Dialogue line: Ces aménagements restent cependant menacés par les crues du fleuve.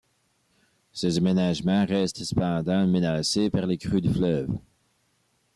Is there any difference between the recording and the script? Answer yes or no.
no